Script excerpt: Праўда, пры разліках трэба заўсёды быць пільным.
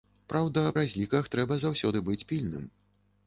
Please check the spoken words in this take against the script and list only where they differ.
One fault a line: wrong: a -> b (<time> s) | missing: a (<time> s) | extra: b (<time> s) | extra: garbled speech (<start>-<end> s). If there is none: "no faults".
missing: пры (0.6 s)